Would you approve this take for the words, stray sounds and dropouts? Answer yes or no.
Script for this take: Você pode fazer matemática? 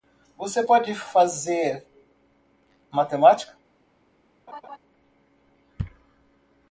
no